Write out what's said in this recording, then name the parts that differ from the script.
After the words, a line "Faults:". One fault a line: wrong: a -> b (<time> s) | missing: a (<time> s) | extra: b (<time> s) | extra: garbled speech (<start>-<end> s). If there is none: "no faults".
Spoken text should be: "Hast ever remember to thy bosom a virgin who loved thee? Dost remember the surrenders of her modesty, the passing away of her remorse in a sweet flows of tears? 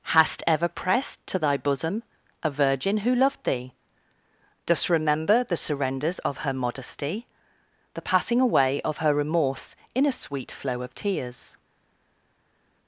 "Hast ever pressed to thy bosom a virgin who loved thee? Dost remember the surrenders of her modesty, the passing away of her remorse in a sweet flow of tears?
Faults:
wrong: remember -> pressed (0.7 s)
wrong: flows -> flow (10.5 s)